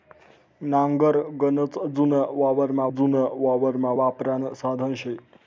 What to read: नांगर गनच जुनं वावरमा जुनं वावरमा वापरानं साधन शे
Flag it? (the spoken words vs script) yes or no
no